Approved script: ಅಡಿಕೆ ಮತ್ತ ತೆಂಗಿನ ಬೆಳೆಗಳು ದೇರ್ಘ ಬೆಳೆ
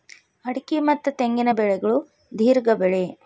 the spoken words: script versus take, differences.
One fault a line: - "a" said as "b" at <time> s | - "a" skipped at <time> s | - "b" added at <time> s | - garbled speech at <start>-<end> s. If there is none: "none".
none